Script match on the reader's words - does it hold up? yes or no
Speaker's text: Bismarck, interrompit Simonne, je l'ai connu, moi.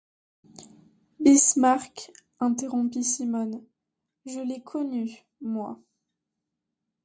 yes